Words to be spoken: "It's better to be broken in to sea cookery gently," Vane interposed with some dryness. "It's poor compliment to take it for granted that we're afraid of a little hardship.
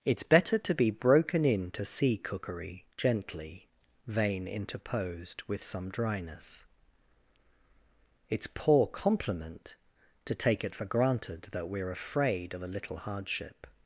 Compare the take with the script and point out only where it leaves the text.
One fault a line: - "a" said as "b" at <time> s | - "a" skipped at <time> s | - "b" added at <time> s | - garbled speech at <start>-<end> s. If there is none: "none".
none